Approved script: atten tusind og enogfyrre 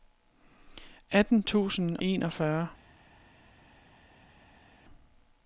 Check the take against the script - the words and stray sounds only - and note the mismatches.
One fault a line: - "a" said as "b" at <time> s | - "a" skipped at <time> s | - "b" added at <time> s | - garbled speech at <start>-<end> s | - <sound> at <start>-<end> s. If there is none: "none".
- "og" skipped at 2.0 s